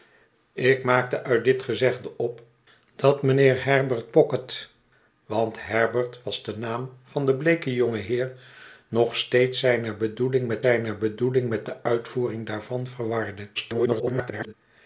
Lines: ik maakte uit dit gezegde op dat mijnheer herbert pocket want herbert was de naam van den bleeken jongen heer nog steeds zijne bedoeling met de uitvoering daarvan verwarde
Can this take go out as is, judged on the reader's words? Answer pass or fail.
fail